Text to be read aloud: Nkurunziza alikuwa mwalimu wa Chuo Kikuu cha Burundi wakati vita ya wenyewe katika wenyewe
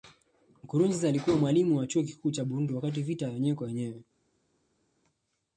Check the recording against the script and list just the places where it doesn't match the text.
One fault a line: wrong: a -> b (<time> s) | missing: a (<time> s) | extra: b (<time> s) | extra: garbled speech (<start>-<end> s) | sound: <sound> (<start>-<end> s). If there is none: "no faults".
wrong: katika -> kwa (3.5 s)